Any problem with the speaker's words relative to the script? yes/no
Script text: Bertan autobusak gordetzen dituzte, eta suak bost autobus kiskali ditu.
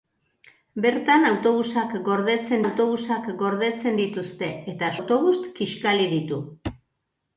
yes